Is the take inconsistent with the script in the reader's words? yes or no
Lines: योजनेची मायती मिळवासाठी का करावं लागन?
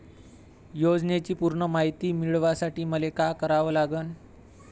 yes